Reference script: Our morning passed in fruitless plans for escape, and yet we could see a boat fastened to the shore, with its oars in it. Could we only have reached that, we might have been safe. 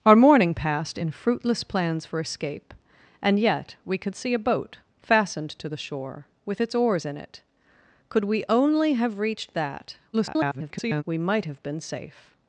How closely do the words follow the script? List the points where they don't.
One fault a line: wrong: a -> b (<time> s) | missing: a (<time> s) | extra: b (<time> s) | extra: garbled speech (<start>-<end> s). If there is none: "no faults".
extra: garbled speech (10.1-11.0 s)